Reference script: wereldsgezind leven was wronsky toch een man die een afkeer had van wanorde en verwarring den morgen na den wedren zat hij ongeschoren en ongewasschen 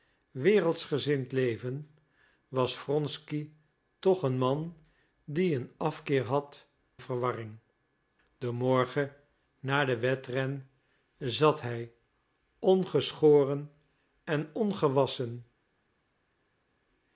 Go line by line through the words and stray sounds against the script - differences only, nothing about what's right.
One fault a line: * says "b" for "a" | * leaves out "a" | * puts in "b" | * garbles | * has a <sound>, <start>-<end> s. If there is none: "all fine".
* leaves out "van wanorde en"